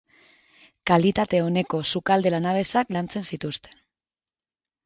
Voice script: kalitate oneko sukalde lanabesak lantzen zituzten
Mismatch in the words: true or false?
false